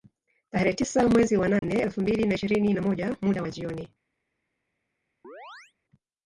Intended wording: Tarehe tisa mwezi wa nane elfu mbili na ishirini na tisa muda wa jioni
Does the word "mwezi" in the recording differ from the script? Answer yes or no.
no